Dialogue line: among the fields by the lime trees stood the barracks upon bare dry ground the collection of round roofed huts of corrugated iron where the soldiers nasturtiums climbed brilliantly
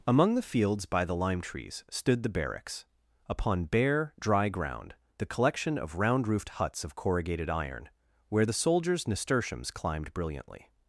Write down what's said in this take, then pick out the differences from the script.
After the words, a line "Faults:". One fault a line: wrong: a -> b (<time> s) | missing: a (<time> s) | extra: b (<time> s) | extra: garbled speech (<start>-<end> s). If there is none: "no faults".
among the fields by the lime trees stood the barracks upon bare dry ground the collection of round roofed huts of corrugated iron where the soldiers nasturtiums climbed brilliantly
Faults:
no faults